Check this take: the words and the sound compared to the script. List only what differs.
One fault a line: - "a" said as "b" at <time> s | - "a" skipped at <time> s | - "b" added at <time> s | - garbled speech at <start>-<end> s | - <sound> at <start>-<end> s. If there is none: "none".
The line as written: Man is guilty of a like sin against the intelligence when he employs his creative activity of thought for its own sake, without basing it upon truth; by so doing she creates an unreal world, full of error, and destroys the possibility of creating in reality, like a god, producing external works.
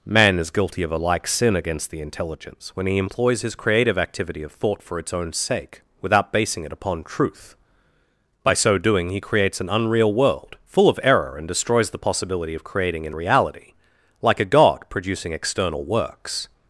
- "she" said as "he" at 9.1 s